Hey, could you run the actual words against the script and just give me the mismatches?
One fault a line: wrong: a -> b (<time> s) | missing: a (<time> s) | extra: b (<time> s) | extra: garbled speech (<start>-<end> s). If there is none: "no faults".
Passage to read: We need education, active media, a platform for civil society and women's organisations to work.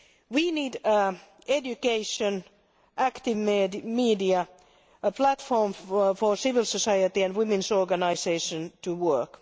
no faults